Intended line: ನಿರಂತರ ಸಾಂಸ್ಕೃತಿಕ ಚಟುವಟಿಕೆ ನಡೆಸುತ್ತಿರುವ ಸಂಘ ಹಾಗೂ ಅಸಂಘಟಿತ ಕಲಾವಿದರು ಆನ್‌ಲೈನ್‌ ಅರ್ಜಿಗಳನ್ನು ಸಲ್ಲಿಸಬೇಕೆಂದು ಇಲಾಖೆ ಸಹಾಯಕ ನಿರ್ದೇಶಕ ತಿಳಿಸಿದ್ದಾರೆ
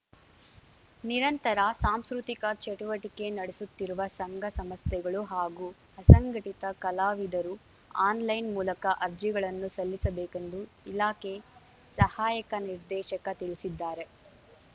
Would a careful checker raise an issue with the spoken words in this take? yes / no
yes